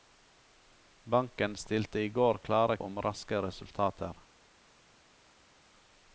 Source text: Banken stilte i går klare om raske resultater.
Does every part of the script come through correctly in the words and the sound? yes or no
yes